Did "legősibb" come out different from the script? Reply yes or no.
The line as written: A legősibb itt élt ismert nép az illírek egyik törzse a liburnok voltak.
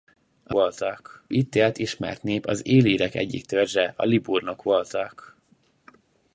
yes